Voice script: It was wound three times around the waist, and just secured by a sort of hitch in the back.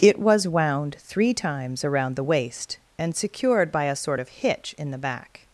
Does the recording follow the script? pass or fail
fail